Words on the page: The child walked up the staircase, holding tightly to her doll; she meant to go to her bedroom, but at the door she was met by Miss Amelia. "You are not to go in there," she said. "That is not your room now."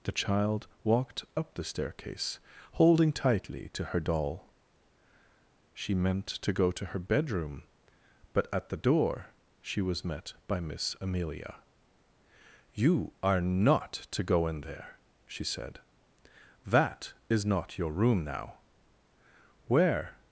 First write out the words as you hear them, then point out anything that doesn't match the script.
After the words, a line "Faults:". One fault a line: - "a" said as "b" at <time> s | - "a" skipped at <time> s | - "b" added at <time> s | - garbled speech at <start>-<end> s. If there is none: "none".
The child walked up the staircase, holding tightly to her doll; she meant to go to her bedroom, but at the door she was met by Miss Amelia. "You are not to go in there," she said. "That is not your room now." "Where
Faults:
- "Where" added at 19.7 s